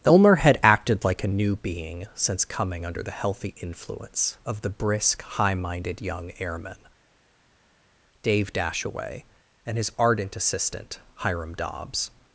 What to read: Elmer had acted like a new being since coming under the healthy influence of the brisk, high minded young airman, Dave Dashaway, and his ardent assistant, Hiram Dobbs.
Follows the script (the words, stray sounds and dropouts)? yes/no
yes